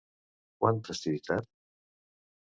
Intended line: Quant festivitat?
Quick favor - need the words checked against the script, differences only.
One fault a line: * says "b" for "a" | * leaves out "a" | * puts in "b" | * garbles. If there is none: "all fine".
all fine